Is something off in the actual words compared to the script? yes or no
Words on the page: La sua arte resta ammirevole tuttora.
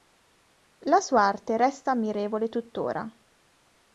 no